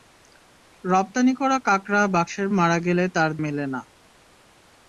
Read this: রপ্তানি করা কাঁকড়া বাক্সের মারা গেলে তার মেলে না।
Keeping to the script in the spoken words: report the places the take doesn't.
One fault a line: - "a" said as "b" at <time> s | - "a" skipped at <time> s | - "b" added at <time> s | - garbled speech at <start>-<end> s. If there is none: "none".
none